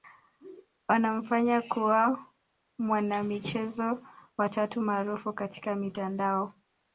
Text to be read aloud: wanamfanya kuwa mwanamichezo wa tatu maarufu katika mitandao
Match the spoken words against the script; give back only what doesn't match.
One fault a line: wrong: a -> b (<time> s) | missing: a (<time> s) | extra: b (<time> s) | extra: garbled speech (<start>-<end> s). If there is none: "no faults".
no faults